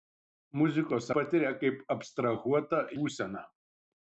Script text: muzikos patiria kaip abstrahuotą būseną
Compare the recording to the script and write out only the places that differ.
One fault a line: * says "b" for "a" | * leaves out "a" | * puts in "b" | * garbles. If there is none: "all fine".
all fine